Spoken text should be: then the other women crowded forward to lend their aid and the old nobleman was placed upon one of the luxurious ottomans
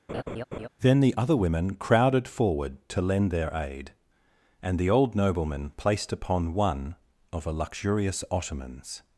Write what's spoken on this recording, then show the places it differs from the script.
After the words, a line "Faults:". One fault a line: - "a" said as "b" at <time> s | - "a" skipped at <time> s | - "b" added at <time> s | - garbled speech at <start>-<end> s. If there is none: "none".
then the other women crowded forward to lend their aid and the old nobleman placed upon one of a luxurious ottomans
Faults:
- "was" skipped at 5.7 s
- "the" said as "a" at 7.5 s